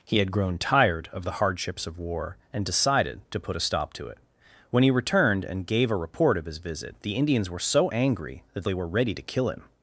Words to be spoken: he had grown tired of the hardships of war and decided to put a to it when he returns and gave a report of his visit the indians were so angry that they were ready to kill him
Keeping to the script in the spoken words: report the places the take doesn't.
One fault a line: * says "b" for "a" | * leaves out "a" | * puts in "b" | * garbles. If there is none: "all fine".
* puts in "stop"
* says "returned" for "returns"